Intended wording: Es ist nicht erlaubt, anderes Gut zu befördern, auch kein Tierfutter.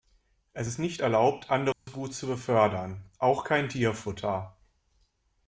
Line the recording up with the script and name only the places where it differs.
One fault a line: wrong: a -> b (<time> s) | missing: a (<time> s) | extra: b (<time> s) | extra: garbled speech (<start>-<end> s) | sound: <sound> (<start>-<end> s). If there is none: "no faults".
sound: dropout (1.7-1.9 s)